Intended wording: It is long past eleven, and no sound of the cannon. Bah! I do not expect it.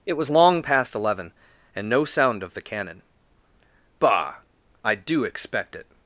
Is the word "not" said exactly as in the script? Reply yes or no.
no